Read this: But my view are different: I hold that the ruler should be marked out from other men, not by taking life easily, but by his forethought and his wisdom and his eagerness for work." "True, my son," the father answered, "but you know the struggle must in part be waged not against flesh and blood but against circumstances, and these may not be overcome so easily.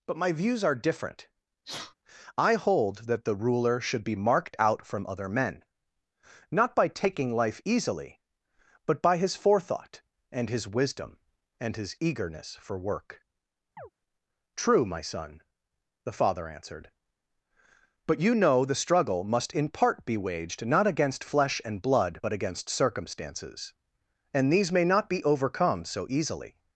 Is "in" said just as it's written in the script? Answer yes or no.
yes